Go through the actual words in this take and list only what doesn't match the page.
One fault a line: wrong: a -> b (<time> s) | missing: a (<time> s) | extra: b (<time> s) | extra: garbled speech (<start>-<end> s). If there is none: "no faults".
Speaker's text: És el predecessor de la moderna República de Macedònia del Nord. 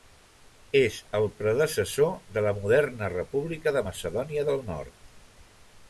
no faults